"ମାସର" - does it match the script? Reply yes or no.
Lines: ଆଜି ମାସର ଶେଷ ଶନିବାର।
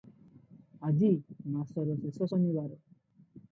yes